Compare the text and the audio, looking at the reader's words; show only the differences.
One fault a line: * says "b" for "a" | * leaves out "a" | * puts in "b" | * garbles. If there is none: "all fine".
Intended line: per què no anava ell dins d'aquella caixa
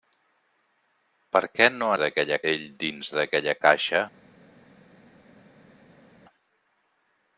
* says "d'aquella" for "anava"